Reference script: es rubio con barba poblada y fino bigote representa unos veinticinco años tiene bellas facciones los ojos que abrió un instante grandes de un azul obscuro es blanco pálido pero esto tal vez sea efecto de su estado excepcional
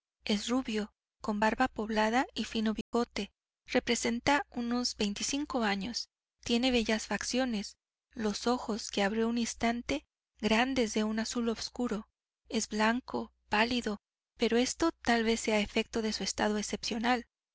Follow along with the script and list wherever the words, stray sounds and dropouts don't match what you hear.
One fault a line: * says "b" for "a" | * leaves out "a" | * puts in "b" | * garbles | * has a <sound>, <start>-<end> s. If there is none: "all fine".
* has a dropout, 2.8-2.9 s